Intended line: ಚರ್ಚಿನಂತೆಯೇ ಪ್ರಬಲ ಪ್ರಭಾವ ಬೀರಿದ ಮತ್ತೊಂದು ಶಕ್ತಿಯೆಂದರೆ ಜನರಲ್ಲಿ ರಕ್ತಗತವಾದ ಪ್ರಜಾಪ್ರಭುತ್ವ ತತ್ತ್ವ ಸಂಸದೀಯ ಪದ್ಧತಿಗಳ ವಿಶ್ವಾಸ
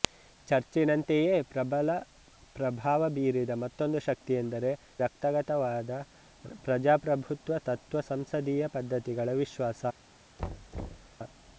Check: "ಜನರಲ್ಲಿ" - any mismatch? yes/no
yes